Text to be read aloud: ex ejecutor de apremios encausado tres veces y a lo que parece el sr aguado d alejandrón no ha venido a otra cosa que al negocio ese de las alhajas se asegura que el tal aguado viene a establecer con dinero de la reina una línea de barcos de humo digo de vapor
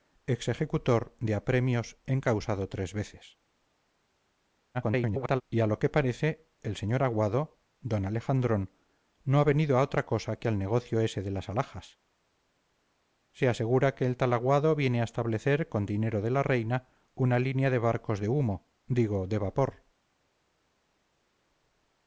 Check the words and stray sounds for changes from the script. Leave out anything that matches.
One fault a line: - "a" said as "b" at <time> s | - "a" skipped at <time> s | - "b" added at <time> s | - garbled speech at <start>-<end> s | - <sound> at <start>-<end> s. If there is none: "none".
- garbled speech at 4.7-5.4 s